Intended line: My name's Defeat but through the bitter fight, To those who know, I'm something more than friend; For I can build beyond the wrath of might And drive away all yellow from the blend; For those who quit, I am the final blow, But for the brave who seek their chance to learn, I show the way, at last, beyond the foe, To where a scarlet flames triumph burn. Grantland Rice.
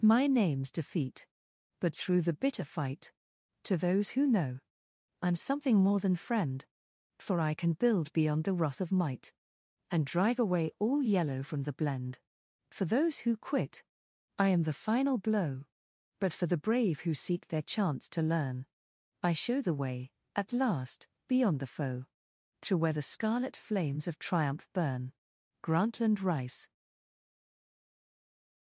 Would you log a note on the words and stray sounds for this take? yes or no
yes